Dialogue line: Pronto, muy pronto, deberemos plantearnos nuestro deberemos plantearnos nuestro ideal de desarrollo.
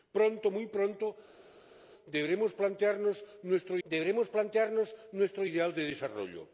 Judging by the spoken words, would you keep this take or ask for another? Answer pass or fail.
pass